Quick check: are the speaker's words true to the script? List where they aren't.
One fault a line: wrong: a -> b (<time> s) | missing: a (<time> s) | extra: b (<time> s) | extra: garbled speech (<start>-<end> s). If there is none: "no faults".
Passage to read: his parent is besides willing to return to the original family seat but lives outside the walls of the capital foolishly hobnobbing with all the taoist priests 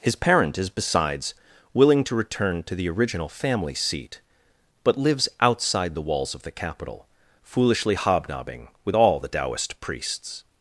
no faults